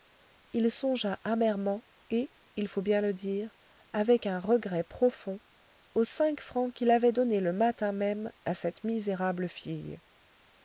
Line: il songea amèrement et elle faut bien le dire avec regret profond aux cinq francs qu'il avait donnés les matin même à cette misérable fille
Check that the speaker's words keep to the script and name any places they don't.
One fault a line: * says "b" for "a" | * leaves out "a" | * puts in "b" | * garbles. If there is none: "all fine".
* says "il" for "elle"
* puts in "un"
* says "le" for "les"